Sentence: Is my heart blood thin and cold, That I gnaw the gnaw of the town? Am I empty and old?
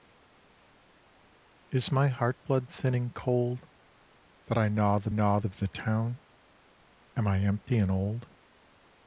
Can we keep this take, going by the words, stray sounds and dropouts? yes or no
yes